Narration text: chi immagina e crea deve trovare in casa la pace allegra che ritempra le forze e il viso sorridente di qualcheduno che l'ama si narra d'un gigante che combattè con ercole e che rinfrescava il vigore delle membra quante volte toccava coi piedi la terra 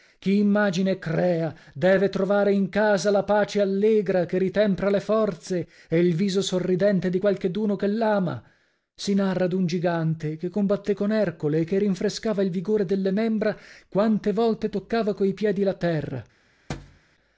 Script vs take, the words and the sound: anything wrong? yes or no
yes